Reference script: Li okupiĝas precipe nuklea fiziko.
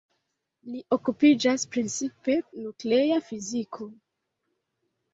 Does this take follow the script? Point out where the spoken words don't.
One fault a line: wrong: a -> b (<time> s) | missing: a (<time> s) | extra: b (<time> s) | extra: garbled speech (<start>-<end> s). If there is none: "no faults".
no faults